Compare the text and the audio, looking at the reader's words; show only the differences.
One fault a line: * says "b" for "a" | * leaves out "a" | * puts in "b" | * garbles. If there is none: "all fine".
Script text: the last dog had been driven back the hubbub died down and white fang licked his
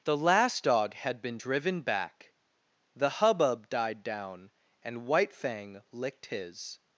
all fine